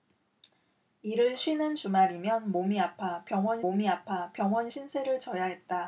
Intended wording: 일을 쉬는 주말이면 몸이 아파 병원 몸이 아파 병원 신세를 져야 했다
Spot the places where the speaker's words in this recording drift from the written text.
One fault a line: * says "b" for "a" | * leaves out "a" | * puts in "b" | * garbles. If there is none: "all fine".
all fine